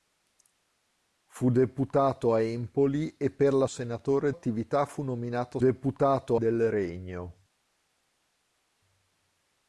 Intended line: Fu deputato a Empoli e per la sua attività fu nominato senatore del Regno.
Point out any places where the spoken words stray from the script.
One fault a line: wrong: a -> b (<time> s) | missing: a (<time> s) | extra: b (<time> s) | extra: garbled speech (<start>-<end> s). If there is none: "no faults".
wrong: sua -> senatore (3.6 s)
wrong: senatore -> deputato (5.6 s)